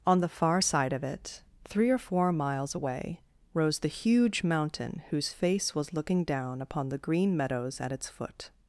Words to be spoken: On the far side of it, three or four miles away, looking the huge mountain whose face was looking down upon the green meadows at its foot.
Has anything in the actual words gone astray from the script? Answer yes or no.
yes